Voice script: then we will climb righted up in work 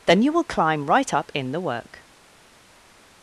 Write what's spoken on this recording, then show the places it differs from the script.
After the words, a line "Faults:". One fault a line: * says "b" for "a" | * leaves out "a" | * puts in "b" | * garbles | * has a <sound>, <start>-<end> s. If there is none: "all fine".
then you will climb right up in the work
Faults:
* says "you" for "we"
* says "right" for "righted"
* puts in "the"